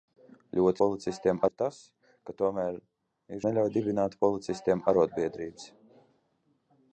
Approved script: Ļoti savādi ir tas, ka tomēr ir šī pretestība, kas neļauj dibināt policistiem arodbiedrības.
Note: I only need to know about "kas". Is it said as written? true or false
false